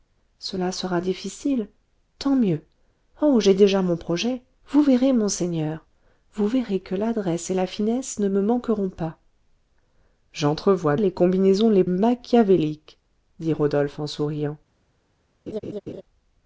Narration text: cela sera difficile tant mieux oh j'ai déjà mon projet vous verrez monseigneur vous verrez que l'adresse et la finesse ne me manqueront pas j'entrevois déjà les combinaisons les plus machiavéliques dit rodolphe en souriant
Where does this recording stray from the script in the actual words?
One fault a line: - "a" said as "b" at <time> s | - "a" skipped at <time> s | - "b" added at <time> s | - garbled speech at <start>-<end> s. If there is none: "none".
- "déjà" skipped at 11.0 s
- "plus" skipped at 11.8 s